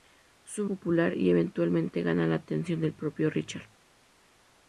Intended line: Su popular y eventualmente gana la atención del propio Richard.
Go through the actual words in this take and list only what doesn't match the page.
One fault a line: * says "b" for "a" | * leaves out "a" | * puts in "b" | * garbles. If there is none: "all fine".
all fine